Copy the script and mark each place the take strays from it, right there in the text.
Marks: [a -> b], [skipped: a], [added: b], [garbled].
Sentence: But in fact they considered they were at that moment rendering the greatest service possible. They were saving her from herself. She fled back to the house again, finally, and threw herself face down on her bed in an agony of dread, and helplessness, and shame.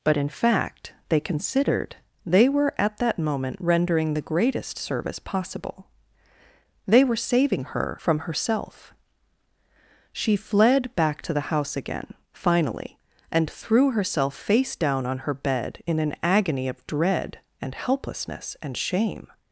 But in fact they considered they were at that moment rendering the greatest service possible. They were saving her from herself. She fled back to the house again, finally, and threw herself face down on her bed in an agony of dread, and helplessness, and shame.